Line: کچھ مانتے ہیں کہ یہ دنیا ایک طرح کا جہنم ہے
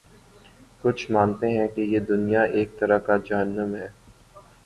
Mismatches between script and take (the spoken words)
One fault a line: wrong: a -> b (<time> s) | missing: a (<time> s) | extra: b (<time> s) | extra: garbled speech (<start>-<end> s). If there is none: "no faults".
no faults